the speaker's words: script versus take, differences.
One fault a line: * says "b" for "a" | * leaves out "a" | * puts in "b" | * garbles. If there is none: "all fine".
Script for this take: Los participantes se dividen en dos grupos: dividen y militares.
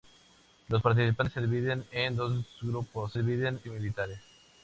all fine